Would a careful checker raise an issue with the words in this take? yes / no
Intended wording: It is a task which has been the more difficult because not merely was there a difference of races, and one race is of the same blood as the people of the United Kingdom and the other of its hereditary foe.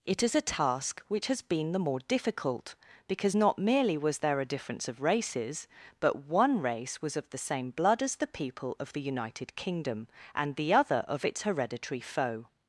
yes